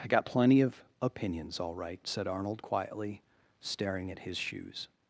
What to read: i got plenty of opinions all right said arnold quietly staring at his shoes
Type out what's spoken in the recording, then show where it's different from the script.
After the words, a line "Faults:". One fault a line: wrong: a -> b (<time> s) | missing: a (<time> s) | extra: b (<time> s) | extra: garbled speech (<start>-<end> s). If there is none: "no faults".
i got plenty of opinions all right said arnold quietly staring at his shoes
Faults:
no faults